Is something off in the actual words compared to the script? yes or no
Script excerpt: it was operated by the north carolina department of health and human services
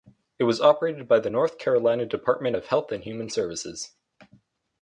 no